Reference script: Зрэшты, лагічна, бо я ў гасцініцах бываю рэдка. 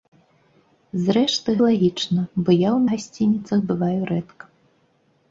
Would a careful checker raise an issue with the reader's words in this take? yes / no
no